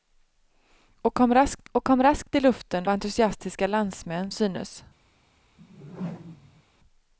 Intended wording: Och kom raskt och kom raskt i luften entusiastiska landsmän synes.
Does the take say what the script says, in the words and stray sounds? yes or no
no